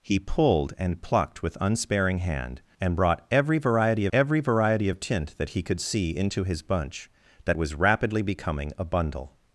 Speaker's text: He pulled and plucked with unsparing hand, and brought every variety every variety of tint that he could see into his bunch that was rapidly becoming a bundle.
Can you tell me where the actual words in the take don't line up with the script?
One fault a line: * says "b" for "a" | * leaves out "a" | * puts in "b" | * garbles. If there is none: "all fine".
all fine